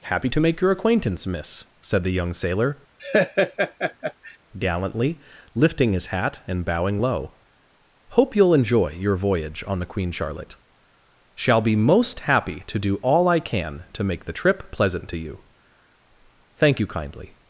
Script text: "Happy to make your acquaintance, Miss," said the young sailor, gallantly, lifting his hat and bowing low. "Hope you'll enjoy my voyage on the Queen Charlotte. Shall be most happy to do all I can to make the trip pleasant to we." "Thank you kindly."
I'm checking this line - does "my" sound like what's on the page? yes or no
no